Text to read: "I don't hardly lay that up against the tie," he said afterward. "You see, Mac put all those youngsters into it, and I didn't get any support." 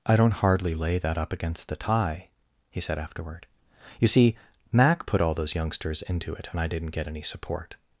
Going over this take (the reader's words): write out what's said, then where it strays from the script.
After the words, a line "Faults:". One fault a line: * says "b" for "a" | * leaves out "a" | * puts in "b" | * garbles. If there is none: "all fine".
"I don't hardly lay that up against the tie," he said afterward. "You see, Mac put all those youngsters into it, and I didn't get any support."
Faults:
all fine